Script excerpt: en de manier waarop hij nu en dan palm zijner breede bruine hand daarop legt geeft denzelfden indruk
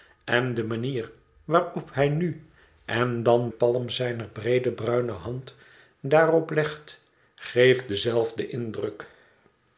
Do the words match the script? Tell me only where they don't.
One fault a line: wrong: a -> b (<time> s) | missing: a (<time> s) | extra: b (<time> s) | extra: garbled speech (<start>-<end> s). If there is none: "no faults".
no faults